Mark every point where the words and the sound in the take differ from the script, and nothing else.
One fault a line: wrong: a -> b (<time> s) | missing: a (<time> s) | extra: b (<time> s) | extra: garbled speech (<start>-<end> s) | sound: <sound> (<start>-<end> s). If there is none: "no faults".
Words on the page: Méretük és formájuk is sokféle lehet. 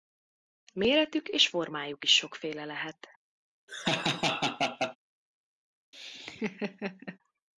sound: laugh (3.7-5.0 s)
sound: laugh (5.9-7.2 s)